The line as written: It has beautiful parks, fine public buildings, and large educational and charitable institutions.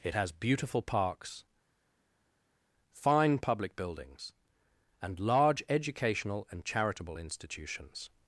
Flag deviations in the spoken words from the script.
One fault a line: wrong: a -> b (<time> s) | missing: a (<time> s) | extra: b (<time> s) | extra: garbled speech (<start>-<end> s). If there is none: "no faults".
no faults